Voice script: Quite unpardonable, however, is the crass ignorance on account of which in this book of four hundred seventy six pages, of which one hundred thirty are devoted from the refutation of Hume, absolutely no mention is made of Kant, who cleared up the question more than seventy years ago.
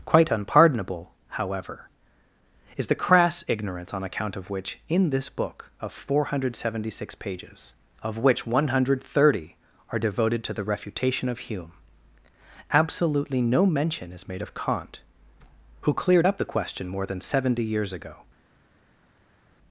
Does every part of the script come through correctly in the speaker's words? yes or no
no